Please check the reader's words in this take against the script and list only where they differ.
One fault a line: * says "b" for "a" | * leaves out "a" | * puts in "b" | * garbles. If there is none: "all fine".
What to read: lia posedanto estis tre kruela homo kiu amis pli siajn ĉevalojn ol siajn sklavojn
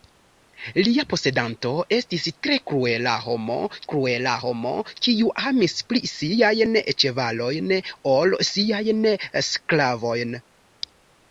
* puts in "kruela homo"